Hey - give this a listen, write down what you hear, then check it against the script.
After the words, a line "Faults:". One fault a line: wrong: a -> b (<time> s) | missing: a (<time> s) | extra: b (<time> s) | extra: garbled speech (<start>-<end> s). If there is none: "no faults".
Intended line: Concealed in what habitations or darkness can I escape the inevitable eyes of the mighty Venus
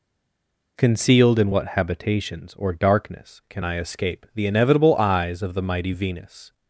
Concealed in what habitations or darkness can I escape the inevitable eyes of the mighty Venus
Faults:
no faults